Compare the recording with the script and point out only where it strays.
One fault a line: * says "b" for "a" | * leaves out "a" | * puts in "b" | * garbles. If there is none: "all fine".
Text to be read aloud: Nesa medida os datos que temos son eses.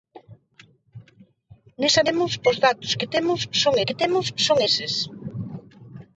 * says "temos" for "medida"
* puts in "que temos son"